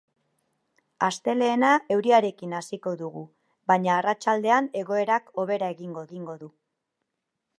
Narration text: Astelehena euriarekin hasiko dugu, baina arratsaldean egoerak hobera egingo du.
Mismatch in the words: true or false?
true